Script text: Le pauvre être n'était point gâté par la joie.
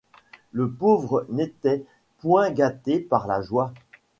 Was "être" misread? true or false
true